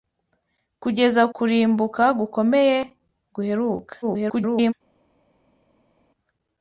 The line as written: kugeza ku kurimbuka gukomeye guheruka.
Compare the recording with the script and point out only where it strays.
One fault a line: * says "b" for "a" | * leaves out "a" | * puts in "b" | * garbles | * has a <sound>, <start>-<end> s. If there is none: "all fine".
* leaves out "ku"
* garbles